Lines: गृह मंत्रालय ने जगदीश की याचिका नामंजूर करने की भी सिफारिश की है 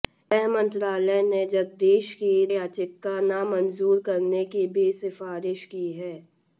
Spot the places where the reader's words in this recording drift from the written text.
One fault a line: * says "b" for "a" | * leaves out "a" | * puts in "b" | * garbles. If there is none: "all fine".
all fine